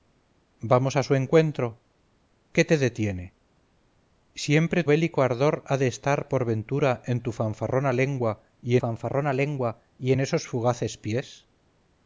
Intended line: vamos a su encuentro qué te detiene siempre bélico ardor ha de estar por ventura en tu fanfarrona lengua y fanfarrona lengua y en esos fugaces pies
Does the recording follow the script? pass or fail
pass